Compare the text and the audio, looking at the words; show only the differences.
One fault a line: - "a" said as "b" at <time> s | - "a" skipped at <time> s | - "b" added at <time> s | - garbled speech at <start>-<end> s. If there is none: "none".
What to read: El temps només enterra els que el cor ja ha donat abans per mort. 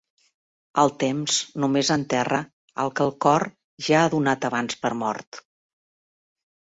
- "els" said as "el" at 2.8 s